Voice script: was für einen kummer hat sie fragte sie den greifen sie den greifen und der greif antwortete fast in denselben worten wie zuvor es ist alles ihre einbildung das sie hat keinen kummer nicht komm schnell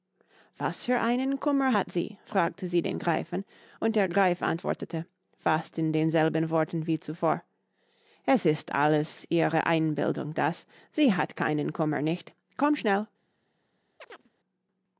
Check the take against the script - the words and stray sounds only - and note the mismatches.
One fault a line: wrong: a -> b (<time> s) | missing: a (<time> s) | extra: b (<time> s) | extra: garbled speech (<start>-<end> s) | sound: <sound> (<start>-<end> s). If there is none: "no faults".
missing: sie den greifen (3.4 s)
sound: chirp (14.0-14.3 s)